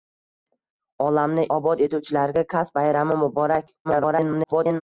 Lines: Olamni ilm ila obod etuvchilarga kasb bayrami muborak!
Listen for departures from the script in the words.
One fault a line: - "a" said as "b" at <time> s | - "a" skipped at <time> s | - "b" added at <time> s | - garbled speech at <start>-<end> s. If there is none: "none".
- "ilm ila" skipped at 1.4 s
- garbled speech at 3.8-4.8 s